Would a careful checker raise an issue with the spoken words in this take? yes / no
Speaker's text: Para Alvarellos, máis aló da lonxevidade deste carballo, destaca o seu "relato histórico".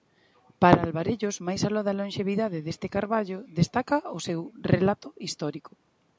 no